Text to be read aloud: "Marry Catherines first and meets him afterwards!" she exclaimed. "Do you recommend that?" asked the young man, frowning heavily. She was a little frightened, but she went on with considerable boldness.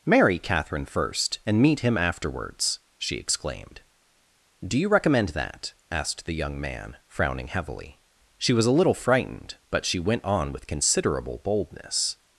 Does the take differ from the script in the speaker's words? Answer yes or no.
yes